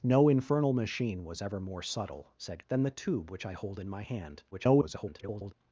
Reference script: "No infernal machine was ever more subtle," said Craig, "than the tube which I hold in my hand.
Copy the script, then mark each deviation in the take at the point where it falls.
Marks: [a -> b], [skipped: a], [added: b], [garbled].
"No infernal machine was ever more subtle," said [skipped: Craig,] "than the tube which I hold in my hand. [garbled]